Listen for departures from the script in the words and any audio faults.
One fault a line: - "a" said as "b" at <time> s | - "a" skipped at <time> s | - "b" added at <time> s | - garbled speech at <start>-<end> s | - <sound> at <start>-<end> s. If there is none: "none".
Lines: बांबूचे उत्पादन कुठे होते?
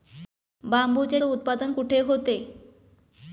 none